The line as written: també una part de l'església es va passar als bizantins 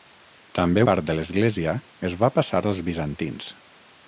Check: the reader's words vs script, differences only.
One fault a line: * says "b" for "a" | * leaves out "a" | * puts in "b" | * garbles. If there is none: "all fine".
* leaves out "una"